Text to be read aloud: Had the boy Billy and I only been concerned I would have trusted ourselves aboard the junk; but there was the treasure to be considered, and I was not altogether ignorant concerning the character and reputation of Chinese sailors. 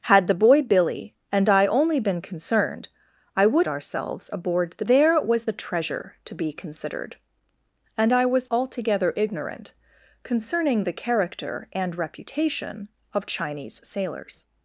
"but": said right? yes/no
no